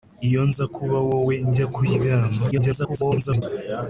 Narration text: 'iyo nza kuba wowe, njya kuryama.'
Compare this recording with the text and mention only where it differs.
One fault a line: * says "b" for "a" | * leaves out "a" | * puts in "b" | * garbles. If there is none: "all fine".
* garbles